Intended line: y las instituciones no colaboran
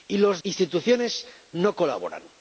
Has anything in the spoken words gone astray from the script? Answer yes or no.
no